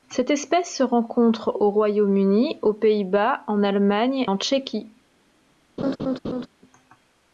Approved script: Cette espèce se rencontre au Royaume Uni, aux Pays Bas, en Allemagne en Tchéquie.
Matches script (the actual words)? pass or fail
pass